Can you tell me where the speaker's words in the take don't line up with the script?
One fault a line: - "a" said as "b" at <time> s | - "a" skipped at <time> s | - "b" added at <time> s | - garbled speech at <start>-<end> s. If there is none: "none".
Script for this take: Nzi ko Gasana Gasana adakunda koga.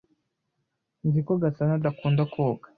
- "Gasana" skipped at 1.7 s